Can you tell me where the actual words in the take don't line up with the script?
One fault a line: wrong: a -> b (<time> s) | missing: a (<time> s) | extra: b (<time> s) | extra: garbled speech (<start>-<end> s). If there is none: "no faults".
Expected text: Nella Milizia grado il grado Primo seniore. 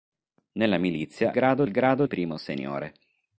no faults